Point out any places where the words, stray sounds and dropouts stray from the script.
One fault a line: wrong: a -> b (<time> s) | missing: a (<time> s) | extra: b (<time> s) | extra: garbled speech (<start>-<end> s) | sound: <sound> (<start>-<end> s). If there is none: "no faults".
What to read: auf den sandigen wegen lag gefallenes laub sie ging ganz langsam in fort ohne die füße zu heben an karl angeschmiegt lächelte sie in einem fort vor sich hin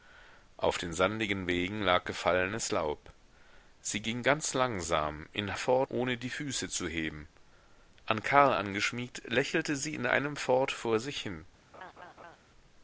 sound: laugh (11.7-12.4 s)